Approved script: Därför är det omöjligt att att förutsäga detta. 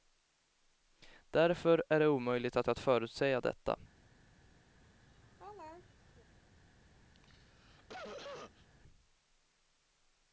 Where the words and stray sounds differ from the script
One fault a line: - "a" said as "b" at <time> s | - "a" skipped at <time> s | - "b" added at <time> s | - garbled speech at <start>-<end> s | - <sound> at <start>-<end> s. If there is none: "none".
- laugh at 4.7-6.3 s
- cough at 7.1-8.7 s